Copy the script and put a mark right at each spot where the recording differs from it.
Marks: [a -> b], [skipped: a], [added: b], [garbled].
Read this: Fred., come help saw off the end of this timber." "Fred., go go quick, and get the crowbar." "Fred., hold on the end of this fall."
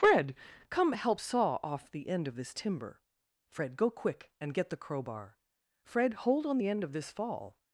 Fred., come help saw off the end of this timber." "Fred., go [skipped: go] quick, and get the crowbar." "Fred., hold on the end of this fall."